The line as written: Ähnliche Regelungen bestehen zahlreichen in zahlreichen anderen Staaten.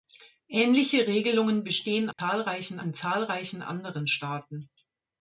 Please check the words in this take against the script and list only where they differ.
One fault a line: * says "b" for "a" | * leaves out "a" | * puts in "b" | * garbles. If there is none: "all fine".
all fine